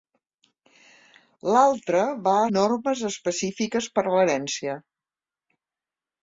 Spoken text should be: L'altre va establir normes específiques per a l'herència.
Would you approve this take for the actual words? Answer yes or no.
no